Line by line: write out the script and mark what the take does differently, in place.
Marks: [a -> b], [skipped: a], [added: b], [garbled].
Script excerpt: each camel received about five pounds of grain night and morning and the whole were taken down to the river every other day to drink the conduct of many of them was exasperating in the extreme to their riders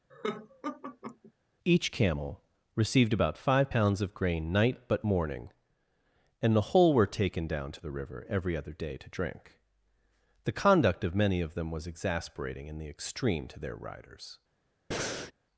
each camel received about five pounds of grain night [and -> but] morning and the whole were taken down to the river every other day to drink the conduct of many of them was exasperating in the extreme to their riders